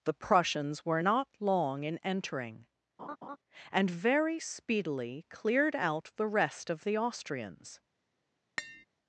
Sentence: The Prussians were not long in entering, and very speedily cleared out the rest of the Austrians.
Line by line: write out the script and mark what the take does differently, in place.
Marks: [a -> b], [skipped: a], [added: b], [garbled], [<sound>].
The Prussians were not long in entering, [laugh] and very speedily cleared out the rest of the Austrians. [tap]